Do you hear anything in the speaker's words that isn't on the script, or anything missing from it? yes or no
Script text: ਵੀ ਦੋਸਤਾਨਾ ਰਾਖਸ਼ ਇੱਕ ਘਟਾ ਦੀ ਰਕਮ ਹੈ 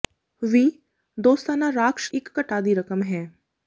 no